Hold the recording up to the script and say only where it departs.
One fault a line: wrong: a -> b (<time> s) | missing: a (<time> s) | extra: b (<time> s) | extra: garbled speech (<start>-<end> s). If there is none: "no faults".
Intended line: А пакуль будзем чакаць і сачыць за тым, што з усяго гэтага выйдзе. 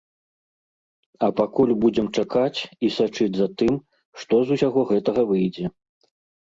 no faults